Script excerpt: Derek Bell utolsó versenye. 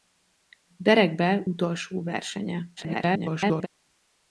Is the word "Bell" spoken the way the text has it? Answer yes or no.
yes